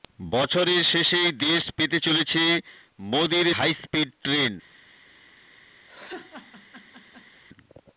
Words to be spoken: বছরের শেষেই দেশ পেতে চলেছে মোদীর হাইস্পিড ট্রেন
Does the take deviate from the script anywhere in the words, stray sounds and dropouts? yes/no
yes